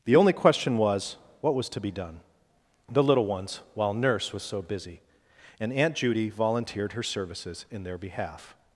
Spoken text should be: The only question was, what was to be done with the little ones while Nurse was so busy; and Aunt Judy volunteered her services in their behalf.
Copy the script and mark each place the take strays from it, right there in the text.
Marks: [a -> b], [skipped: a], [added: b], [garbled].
The only question was, what was to be done [skipped: with] the little ones while Nurse was so busy; and Aunt Judy volunteered her services in their behalf.